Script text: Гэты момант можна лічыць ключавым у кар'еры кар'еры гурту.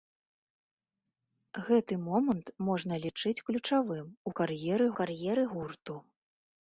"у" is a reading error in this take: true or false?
false